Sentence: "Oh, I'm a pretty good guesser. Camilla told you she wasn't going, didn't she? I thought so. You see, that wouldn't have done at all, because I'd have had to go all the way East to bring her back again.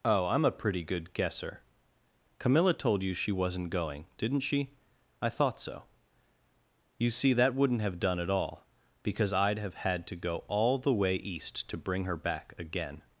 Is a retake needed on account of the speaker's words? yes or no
no